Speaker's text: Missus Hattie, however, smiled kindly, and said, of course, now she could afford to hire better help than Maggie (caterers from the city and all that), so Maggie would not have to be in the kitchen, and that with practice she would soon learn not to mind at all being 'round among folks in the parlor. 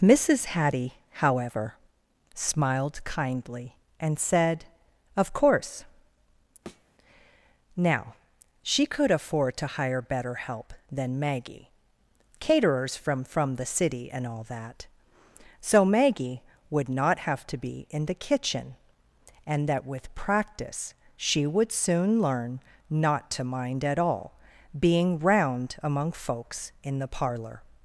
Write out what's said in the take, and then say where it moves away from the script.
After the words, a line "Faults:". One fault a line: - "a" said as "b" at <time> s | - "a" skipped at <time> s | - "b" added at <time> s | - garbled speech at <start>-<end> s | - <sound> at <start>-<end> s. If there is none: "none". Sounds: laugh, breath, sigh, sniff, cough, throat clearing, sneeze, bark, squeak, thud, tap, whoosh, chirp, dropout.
Missus Hattie, however, smiled kindly, and said, of course, now she could afford to hire better help than Maggie (caterers from from the city and all that), so Maggie would not have to be in the kitchen, and that with practice she would soon learn not to mind at all being 'round among folks in the parlor.
Faults:
- thud at 6.7-6.9 s
- "from" added at 13.2 s